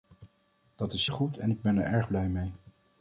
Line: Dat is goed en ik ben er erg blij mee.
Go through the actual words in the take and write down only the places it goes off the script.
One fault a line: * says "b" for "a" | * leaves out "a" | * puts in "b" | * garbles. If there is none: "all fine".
all fine